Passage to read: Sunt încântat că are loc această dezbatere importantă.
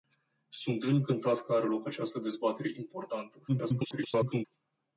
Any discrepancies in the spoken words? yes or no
yes